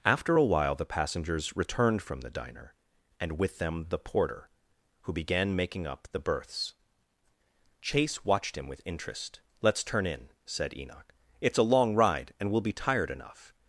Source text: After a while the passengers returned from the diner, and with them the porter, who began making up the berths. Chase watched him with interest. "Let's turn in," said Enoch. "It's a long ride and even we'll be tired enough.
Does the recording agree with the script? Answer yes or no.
no